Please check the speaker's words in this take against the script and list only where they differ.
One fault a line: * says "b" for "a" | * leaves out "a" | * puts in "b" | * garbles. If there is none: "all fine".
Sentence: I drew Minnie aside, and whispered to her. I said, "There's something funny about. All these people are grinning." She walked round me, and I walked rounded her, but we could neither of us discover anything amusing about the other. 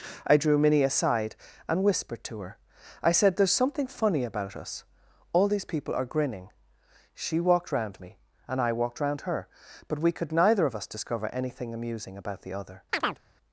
* puts in "us"
* says "round" for "rounded"